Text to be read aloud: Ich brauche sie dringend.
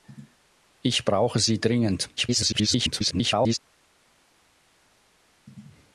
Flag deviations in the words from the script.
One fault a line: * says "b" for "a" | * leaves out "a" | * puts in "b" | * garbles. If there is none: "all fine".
* garbles